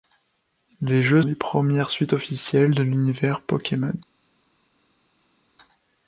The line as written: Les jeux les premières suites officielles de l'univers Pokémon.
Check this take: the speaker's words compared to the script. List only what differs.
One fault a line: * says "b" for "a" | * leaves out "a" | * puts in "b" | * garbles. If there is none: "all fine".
all fine